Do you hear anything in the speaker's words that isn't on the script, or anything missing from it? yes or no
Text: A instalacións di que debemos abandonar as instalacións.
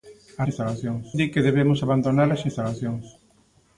no